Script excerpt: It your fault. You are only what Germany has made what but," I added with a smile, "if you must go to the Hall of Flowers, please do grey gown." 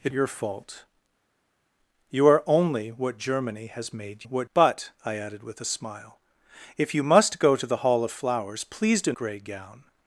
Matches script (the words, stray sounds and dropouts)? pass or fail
pass